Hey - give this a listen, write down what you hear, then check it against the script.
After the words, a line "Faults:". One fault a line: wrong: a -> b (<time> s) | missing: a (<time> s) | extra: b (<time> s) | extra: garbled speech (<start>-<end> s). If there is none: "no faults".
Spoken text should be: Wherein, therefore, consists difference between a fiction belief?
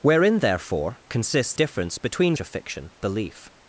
Wherein, therefore, consists difference between a fiction belief?
Faults:
no faults